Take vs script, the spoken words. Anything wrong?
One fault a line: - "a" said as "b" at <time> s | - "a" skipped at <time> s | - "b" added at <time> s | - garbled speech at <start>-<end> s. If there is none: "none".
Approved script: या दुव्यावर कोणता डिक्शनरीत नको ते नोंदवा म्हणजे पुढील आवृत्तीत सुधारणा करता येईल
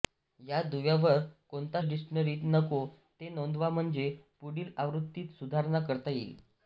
none